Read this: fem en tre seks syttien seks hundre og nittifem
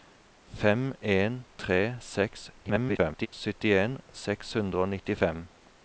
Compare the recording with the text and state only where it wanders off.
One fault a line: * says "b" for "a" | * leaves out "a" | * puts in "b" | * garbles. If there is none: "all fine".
* garbles